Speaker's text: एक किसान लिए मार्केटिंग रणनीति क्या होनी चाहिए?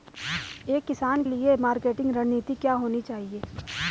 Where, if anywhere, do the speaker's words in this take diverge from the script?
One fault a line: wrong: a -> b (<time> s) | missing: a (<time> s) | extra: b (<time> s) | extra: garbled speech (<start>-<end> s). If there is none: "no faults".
no faults